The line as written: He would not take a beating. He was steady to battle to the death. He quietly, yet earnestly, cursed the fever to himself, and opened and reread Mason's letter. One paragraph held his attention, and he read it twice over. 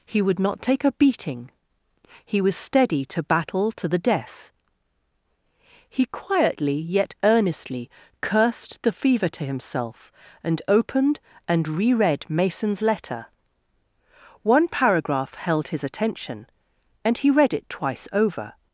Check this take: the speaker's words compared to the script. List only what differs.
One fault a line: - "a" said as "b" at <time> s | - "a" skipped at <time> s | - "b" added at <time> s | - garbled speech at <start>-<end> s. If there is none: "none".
none